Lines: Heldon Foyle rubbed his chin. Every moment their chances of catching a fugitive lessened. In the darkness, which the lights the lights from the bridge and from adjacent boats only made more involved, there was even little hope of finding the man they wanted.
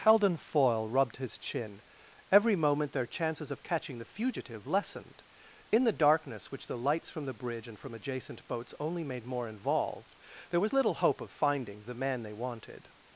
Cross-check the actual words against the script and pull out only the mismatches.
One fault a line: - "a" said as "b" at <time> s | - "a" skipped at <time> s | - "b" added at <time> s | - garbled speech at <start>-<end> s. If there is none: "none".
- "a" said as "the" at 4.0 s
- "the lights" skipped at 7.1 s
- "even" skipped at 10.7 s